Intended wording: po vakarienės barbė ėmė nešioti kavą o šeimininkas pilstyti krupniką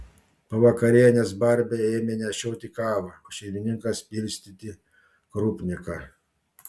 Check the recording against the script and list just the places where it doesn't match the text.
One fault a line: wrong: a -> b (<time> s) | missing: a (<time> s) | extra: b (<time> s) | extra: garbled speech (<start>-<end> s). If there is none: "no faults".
no faults